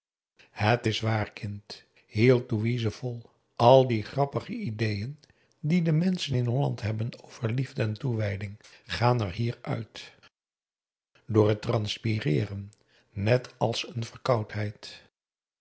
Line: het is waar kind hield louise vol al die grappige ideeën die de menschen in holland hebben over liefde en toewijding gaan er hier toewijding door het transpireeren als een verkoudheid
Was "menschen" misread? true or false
false